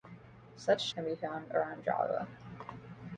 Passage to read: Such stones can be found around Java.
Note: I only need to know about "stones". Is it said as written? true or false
false